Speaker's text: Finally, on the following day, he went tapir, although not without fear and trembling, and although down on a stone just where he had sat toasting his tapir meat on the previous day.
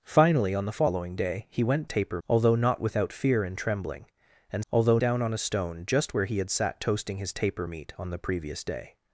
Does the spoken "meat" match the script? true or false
true